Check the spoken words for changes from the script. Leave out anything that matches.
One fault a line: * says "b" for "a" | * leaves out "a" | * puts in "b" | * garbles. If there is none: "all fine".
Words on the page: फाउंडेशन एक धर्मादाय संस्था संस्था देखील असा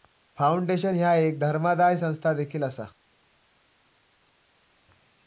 * puts in "ह्या"
* leaves out "संस्था"